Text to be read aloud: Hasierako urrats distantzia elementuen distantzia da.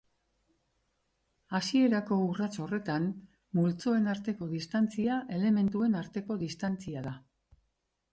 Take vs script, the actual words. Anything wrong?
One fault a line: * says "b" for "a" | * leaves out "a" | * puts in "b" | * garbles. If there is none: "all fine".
* puts in "horretan multzoen arteko"
* puts in "arteko"